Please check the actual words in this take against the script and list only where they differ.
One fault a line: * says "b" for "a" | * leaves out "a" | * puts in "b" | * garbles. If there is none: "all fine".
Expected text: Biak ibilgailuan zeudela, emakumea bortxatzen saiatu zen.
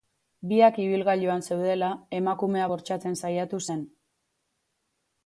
all fine